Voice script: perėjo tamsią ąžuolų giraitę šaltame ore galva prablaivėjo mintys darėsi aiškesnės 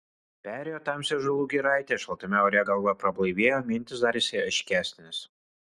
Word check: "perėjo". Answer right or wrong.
right